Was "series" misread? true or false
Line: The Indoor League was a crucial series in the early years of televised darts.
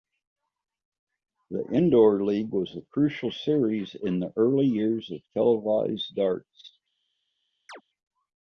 false